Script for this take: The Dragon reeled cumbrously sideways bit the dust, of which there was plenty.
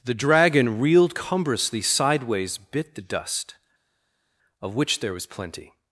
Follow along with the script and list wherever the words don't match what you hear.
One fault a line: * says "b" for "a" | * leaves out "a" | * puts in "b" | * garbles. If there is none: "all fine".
all fine